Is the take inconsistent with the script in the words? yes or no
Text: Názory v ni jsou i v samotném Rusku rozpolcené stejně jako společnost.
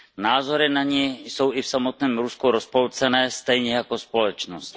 yes